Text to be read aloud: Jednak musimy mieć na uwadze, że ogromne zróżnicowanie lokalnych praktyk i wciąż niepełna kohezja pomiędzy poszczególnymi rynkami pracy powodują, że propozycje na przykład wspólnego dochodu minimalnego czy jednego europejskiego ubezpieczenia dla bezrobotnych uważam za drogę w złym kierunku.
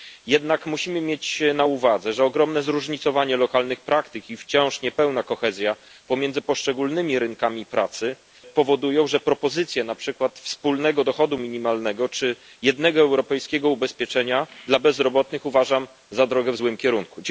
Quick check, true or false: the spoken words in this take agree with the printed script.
true